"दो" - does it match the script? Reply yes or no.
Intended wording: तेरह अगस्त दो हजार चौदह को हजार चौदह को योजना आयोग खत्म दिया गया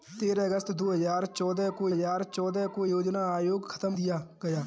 yes